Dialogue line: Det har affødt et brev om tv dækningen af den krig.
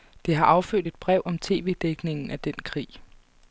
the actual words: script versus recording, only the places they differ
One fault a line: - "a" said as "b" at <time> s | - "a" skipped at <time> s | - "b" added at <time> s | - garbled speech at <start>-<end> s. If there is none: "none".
none